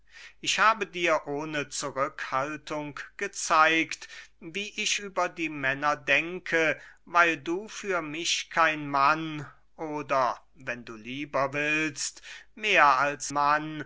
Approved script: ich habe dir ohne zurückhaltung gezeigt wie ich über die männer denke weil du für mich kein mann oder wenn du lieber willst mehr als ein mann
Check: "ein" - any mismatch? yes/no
yes